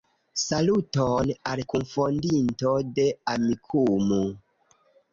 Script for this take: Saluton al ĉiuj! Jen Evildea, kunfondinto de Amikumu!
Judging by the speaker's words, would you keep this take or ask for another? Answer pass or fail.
fail